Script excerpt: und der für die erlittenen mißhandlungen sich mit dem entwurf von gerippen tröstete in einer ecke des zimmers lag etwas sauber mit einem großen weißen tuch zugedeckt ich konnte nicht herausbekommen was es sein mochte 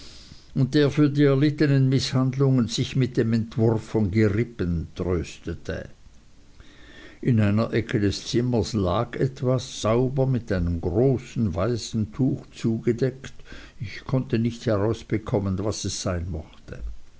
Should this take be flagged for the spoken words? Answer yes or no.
no